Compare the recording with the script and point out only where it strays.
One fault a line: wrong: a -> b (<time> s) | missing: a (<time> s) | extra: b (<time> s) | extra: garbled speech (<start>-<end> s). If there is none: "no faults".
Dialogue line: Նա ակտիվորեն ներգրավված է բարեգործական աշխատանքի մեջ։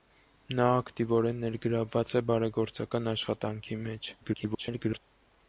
extra: garbled speech (4.2-5.0 s)